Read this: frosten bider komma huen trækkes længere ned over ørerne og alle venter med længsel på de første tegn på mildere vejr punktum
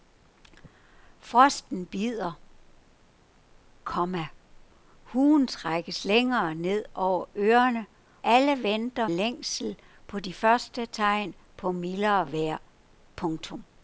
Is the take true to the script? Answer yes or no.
no